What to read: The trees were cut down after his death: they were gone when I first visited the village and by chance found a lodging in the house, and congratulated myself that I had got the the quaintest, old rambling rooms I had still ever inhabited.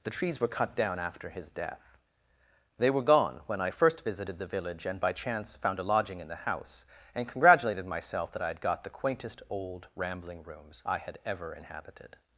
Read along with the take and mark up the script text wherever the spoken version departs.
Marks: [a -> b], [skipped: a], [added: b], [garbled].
The trees were cut down after his death: they were gone when I first visited the village and by chance found a lodging in the house, and congratulated myself that I had got the [skipped: the] quaintest, old rambling rooms I had [skipped: still] ever inhabited.